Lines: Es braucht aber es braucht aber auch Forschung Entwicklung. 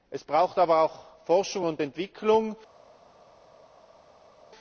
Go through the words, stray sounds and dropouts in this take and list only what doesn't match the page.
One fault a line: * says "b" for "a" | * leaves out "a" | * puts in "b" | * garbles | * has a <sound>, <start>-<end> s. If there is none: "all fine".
* leaves out "es braucht aber"
* puts in "und"